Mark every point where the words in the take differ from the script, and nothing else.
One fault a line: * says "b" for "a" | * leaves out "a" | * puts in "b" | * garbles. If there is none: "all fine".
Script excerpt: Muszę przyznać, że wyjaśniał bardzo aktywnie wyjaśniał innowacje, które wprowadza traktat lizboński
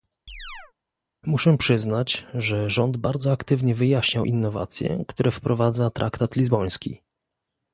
* says "rząd" for "wyjaśniał"